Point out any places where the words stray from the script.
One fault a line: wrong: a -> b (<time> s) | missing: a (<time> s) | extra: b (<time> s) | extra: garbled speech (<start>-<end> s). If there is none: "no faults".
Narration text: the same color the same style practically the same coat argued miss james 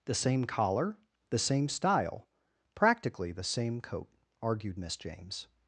wrong: color -> collar (0.5 s)